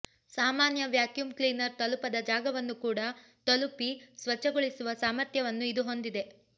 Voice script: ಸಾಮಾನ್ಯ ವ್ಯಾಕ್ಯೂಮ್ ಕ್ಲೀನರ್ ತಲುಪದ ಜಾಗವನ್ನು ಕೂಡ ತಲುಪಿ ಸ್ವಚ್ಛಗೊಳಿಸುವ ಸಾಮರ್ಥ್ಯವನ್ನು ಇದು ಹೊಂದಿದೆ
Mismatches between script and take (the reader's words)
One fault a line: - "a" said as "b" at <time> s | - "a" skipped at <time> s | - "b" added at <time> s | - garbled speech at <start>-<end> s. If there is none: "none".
none